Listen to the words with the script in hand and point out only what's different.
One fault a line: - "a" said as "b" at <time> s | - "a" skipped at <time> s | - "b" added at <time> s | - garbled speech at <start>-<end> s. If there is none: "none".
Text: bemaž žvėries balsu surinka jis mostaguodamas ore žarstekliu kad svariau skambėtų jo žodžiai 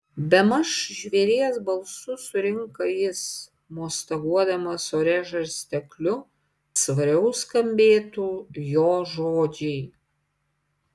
- "kad" skipped at 6.2 s